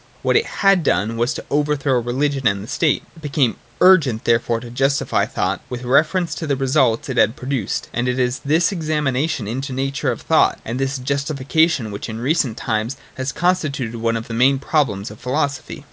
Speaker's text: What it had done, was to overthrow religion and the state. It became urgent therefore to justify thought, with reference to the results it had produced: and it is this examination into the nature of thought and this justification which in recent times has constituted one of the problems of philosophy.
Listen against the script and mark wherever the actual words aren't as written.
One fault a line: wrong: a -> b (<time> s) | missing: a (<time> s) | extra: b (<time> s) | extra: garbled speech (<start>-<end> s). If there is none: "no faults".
extra: main (14.3 s)